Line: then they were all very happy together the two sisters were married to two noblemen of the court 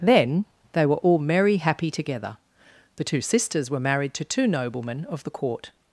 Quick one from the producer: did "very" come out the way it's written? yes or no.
no